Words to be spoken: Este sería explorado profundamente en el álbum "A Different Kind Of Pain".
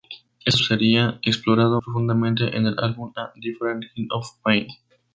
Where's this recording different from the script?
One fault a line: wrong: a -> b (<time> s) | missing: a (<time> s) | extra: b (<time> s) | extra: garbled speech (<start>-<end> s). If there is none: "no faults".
no faults